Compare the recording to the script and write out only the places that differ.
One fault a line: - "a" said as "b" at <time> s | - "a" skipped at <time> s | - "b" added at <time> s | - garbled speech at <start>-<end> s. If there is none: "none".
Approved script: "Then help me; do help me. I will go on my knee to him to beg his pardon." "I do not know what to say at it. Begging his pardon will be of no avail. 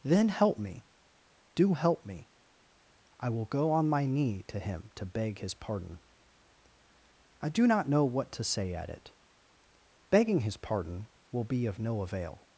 none